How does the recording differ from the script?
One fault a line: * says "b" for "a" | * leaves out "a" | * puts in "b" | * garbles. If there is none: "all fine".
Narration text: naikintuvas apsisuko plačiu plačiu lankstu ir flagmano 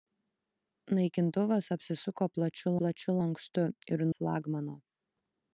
all fine